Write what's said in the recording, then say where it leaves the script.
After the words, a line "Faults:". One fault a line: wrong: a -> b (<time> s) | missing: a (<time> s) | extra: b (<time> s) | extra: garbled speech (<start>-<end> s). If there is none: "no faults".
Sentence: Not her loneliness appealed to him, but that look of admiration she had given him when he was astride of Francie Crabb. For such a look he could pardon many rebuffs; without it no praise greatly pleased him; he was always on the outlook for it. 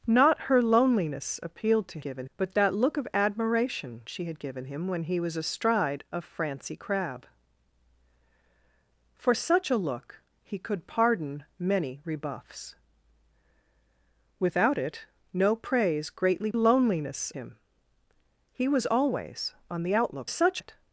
Not her loneliness appealed to given, but that look of admiration she had given him when he was astride of Francie Crabb. For such a look he could pardon many rebuffs; without it no praise greatly loneliness him; he was always on the outlook such it.
Faults:
wrong: him -> given (2.0 s)
wrong: pleased -> loneliness (16.5 s)
wrong: for -> such (20.2 s)